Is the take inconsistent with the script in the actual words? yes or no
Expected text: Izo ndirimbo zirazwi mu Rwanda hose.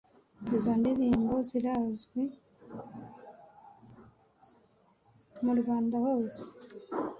no